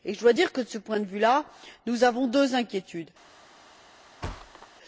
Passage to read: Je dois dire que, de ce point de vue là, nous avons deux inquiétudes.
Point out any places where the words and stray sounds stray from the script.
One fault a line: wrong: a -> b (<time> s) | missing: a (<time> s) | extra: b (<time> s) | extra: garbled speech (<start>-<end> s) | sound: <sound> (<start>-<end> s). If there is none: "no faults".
sound: thud (4.2-4.7 s)